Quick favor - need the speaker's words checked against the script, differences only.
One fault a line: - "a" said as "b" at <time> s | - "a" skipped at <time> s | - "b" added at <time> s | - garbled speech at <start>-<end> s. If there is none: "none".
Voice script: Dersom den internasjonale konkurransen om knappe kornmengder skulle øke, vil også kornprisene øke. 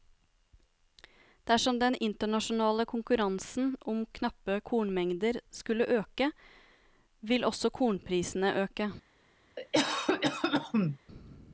none